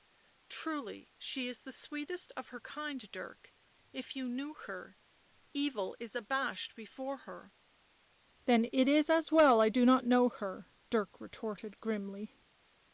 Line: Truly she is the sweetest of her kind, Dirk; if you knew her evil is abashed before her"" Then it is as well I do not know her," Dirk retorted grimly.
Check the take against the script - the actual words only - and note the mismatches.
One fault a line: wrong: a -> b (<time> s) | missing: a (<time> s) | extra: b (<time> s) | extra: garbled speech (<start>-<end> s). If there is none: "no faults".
no faults